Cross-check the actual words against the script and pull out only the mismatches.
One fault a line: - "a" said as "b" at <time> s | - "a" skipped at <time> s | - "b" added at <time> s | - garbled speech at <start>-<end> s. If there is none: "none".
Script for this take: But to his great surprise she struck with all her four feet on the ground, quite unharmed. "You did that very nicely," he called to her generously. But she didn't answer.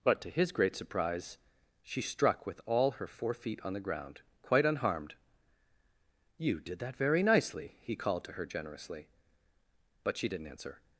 none